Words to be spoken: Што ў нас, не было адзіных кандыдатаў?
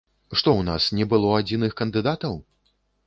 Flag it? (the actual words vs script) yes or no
no